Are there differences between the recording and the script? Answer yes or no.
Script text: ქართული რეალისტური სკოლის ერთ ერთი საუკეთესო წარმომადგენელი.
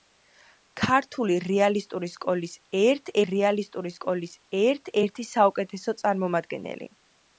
yes